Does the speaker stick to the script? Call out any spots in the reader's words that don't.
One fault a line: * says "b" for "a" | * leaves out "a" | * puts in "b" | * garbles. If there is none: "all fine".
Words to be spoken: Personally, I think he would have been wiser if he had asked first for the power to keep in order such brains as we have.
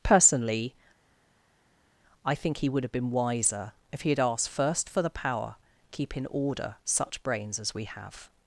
* leaves out "to"